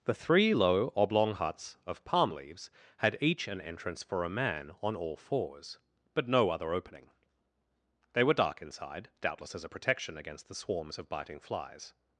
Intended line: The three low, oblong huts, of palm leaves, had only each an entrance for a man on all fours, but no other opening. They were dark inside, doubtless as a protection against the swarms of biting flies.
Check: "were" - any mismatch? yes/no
no